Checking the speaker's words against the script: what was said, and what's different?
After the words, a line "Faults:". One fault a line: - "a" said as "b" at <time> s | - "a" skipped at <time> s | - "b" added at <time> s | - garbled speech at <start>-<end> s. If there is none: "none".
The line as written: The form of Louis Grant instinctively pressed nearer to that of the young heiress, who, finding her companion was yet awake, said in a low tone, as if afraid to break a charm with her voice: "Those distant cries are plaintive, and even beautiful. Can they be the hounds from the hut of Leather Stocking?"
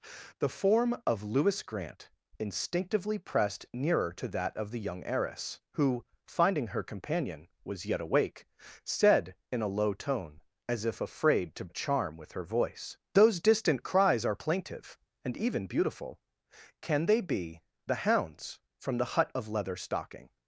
The form of Louis Grant instinctively pressed nearer to that of the young heiress, who, finding her companion was yet awake, said in a low tone, as if afraid to a charm with her voice: "Those distant cries are plaintive, and even beautiful. Can they be the hounds from the hut of Leather Stocking?"
Faults:
- "break" skipped at 11.7 s